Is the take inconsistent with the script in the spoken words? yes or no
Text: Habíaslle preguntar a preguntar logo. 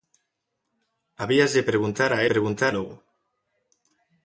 no